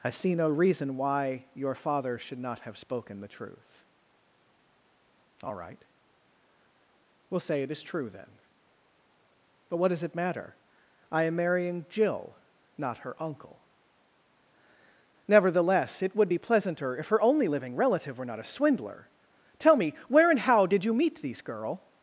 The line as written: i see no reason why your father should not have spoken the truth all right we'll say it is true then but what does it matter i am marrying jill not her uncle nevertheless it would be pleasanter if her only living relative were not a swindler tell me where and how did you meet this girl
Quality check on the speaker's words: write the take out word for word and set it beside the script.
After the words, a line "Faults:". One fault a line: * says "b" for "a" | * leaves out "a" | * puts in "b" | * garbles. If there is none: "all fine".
i see no reason why your father should not have spoken the truth all right we'll say it is true then but what does it matter i am marrying jill not her uncle nevertheless it would be pleasanter if her only living relative were not a swindler tell me where and how did you meet these girl
Faults:
* says "these" for "this"